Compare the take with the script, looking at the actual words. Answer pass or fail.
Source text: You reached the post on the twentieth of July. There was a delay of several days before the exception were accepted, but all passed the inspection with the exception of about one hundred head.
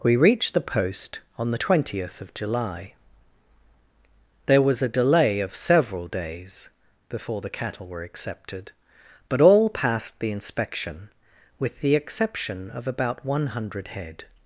fail